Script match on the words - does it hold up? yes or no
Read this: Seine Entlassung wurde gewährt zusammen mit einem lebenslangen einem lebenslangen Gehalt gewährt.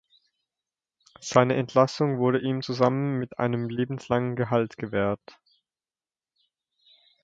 no